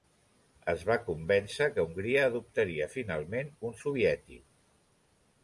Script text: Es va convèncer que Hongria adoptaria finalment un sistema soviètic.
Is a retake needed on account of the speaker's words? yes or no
yes